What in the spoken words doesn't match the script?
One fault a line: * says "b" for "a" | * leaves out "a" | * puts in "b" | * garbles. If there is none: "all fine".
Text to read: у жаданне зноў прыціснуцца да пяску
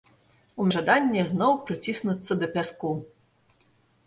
all fine